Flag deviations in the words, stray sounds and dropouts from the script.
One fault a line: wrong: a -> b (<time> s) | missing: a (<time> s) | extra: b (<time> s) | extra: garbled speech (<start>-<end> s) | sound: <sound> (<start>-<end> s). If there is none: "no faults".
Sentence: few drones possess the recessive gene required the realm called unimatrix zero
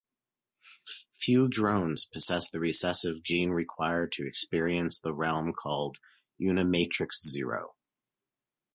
extra: to experience (4.1 s)